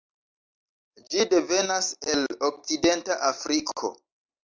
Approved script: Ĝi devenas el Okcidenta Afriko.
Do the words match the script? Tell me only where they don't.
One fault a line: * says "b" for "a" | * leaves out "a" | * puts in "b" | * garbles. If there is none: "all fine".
all fine